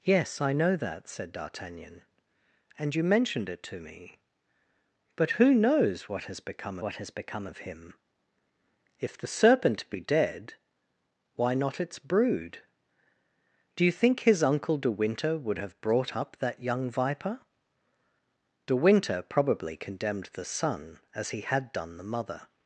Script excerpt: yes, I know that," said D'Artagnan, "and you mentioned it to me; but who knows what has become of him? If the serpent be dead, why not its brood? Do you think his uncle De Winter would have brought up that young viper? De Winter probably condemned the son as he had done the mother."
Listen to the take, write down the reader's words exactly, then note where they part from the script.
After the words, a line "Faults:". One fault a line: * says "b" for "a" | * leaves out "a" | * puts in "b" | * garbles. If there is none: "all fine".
yes, I know that," said D'Artagnan, "and you mentioned it to me; but who knows what has become what has become of him? If the serpent be dead, why not its brood? Do you think his uncle De Winter would have brought up that young viper? De Winter probably condemned the son as he had done the mother."
Faults:
* puts in "what has become"